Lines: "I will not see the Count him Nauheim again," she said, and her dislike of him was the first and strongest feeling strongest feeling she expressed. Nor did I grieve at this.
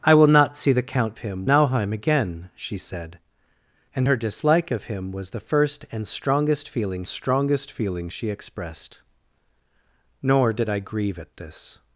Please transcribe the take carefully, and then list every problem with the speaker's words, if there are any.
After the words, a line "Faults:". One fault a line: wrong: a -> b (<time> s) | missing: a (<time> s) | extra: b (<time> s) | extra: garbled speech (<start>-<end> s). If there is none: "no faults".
"I will not see the Count him Nauheim again," she said, and her dislike of him was the first and strongest feeling strongest feeling she expressed. Nor did I grieve at this.
Faults:
no faults